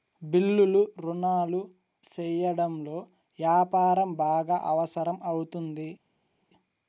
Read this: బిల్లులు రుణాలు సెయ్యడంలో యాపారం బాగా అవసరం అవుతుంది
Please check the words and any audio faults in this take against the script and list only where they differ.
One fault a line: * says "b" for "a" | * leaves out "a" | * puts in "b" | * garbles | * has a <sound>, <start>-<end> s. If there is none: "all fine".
all fine